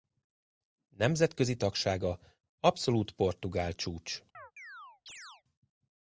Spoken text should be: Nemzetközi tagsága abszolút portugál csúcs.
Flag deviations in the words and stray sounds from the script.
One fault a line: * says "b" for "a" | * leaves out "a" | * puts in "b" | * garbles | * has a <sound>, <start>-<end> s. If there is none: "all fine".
* has a chirp, 4.3-5.4 s